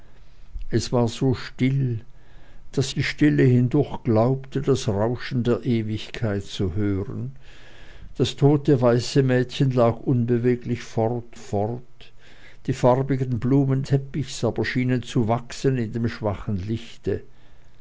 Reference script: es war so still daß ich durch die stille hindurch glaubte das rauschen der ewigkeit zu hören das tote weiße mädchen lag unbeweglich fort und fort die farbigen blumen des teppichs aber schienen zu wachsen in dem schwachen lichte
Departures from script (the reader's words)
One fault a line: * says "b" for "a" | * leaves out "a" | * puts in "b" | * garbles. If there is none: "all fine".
* leaves out "ich durch"
* leaves out "und"
* leaves out "des"